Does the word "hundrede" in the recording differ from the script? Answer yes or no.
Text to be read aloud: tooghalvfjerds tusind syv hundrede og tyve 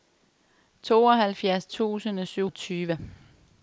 yes